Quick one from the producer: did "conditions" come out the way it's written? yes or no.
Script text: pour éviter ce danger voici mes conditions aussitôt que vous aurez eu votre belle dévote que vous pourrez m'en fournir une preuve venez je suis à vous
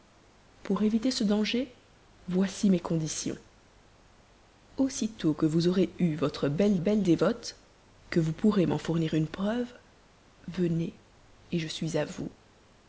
yes